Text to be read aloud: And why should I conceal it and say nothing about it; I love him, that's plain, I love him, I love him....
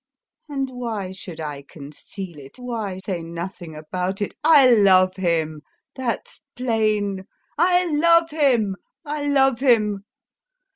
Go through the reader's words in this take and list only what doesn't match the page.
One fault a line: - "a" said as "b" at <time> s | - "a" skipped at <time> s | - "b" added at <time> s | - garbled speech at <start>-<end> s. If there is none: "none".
- "and" said as "why" at 2.6 s